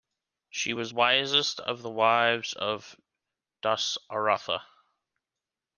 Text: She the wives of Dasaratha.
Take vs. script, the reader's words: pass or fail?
fail